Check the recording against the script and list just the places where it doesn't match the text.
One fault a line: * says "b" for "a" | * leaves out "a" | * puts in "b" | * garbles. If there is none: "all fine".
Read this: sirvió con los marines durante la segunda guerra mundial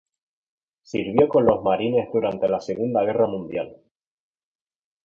all fine